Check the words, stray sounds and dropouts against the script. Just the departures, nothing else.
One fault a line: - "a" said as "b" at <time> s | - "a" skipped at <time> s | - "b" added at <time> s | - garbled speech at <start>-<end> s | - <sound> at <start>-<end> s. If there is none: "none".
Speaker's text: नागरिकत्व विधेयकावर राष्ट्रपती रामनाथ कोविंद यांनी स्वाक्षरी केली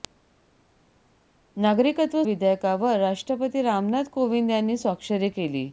none